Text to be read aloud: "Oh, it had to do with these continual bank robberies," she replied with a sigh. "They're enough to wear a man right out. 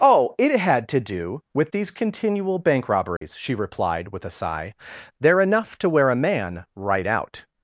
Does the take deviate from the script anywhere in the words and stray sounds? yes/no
yes